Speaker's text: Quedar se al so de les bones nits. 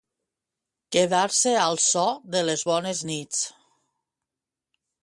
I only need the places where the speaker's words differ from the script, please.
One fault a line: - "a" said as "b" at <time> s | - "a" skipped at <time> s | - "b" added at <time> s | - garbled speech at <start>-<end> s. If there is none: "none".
none